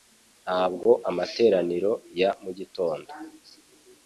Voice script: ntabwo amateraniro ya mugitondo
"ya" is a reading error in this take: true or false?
false